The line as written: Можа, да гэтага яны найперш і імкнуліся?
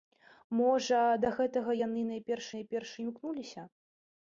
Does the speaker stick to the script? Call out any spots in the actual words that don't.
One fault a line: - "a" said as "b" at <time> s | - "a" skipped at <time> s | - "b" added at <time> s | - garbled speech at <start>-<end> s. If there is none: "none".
- "найперш" added at 2.5 s